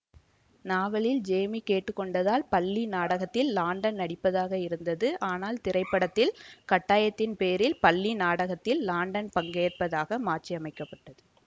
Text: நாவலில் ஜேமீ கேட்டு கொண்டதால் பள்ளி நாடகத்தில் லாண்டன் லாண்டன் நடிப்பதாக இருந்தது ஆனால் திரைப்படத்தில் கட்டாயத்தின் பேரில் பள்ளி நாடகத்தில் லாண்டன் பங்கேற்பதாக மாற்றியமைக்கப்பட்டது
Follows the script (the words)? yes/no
no